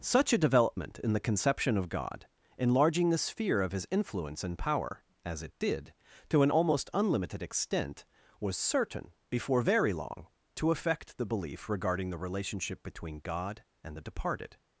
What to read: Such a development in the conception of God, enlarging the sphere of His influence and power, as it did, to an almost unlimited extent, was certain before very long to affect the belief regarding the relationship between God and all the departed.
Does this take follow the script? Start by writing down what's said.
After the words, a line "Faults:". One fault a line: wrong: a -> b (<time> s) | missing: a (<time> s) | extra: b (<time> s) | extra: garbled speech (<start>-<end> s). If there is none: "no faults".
Such a development in the conception of God, enlarging the sphere of His influence and power, as it did, to an almost unlimited extent, was certain before very long to affect the belief regarding the relationship between God and the departed.
Faults:
missing: all (14.0 s)